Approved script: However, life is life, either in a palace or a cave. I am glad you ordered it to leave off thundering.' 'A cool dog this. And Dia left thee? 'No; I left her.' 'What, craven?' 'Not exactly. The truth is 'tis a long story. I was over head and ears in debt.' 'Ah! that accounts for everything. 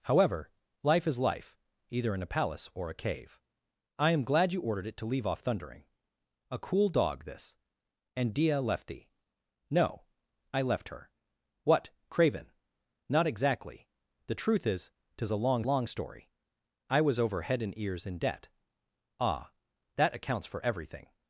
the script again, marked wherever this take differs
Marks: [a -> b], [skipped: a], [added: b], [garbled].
However, life is life, either in a palace or a cave. I am glad you ordered it to leave off thundering.' 'A cool dog this. And Dia left thee? 'No; I left her.' 'What, craven?' 'Not exactly. The truth is 'tis a long [added: long] story. I was over head and ears in debt.' 'Ah! that accounts for everything.